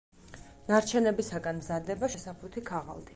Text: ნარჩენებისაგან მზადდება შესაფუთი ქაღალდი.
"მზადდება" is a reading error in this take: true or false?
false